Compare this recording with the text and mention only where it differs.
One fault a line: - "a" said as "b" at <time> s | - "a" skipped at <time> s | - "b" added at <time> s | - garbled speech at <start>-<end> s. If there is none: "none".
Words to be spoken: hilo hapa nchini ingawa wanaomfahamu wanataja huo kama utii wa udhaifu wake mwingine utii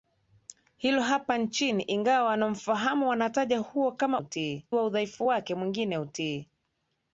none